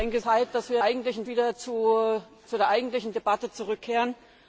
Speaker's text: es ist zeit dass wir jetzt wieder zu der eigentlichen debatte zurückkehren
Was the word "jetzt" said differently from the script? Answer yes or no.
yes